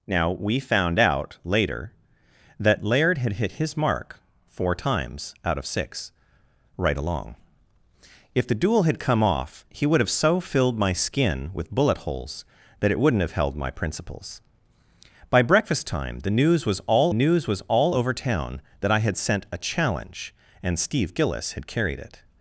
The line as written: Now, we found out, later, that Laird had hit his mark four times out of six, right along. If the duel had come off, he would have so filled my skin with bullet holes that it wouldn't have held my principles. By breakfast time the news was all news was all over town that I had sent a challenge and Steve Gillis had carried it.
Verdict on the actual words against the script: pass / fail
pass